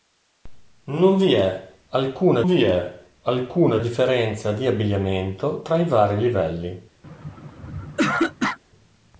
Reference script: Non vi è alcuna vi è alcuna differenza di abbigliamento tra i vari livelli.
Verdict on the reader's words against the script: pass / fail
pass